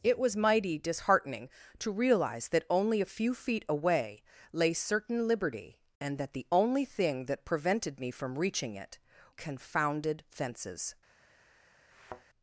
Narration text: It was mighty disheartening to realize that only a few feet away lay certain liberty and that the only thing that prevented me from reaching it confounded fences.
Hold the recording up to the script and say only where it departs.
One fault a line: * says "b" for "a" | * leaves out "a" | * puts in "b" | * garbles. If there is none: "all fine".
all fine